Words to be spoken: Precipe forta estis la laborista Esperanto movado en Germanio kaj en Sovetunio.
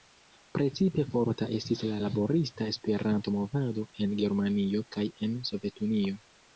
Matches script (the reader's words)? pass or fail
pass